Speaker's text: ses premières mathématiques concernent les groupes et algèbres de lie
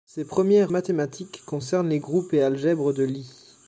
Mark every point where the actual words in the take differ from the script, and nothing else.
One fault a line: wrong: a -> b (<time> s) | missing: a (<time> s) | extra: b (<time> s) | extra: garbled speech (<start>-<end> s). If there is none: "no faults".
no faults